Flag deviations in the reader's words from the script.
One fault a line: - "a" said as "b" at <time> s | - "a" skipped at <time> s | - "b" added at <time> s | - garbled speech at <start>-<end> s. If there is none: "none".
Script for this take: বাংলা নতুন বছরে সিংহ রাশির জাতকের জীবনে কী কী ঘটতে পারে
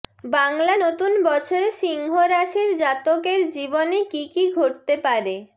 none